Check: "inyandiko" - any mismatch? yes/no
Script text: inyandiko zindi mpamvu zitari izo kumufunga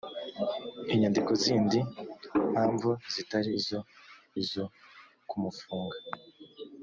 no